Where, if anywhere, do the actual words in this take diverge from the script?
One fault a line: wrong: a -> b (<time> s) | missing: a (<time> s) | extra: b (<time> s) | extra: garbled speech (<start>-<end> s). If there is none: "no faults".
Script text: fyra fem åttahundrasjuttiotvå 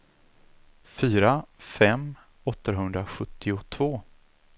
no faults